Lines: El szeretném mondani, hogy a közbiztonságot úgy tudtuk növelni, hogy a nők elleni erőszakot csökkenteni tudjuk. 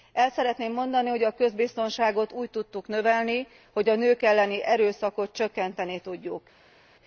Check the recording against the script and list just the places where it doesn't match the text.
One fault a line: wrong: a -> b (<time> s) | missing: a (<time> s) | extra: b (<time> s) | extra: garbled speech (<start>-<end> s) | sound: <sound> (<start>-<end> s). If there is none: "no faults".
no faults